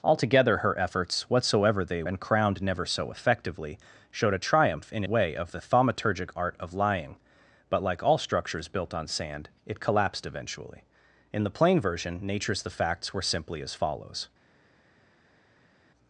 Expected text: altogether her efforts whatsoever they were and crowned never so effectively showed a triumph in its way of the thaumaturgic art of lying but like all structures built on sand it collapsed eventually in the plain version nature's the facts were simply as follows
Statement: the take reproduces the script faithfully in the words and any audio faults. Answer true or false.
false